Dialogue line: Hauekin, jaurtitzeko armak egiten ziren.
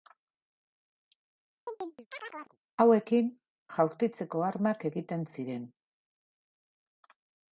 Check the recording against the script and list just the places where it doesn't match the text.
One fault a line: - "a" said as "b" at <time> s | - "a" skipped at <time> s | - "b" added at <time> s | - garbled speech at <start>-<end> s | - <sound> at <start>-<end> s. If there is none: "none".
- chirp at 1.7-2.6 s